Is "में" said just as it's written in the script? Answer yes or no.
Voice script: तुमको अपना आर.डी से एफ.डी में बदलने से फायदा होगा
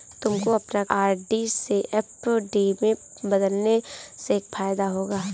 yes